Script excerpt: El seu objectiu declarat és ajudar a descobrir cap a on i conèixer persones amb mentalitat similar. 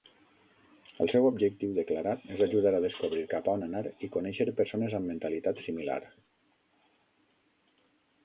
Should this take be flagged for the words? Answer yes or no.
yes